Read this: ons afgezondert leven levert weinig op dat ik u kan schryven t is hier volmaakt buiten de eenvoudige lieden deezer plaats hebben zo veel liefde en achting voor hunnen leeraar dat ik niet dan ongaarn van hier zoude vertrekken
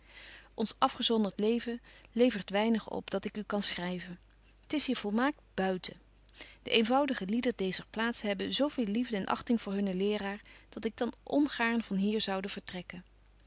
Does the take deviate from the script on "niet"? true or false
true